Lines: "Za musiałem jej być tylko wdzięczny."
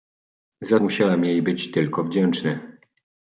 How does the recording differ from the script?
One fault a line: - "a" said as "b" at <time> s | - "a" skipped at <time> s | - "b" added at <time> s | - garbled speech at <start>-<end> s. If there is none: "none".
none